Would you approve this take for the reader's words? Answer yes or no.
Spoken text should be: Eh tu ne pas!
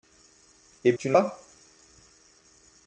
yes